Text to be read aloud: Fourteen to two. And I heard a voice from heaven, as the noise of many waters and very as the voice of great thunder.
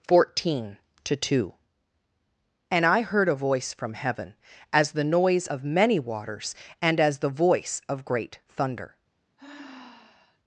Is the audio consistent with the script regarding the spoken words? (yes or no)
no